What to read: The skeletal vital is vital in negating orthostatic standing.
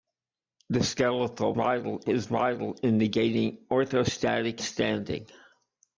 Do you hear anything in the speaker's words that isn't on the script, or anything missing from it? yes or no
no